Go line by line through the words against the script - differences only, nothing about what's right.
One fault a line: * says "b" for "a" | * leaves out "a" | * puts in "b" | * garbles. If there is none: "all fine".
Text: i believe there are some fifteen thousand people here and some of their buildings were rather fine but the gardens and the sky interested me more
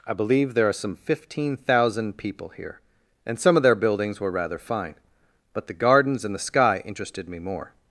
all fine